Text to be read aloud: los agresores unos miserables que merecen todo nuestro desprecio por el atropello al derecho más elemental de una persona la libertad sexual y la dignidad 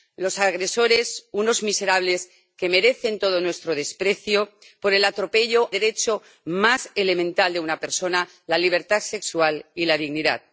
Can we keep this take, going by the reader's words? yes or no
no